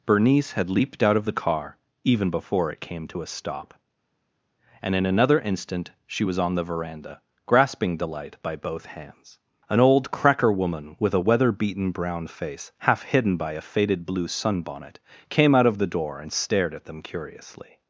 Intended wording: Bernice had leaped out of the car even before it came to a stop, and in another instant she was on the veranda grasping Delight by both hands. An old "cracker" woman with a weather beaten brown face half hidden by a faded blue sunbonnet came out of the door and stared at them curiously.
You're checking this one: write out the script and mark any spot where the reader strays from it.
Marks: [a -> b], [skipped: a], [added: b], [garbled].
Bernice had leaped out of the car even before it came to a stop, and in another instant she was on the veranda grasping Delight by both hands. An old "cracker" woman with a weather beaten brown face half hidden by a faded blue sunbonnet came out of the door and stared at them curiously.